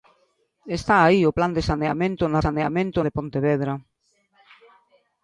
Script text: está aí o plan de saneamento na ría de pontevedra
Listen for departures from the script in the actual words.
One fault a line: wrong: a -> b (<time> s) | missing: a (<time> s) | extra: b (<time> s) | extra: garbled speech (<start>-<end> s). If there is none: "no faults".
wrong: ría -> saneamento (2.4 s)